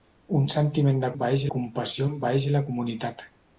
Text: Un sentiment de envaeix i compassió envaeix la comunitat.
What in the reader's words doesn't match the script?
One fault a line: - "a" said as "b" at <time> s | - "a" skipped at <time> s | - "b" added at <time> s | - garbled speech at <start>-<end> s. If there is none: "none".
none